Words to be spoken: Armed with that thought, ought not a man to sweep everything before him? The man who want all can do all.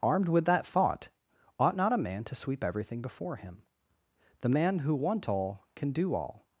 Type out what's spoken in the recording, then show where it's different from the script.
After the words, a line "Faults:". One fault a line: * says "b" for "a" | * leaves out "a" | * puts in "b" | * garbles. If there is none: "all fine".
Armed with that thought, ought not a man to sweep everything before him? The man who want all can do all.
Faults:
all fine